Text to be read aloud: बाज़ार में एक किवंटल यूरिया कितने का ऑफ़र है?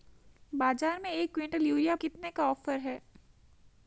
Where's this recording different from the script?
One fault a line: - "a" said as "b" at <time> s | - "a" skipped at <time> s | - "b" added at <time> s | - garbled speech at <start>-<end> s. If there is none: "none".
none